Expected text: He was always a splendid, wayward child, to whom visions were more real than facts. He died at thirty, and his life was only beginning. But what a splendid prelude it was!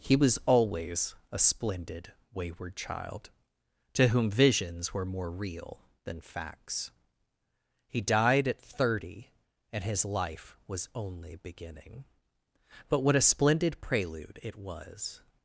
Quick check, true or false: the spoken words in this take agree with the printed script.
true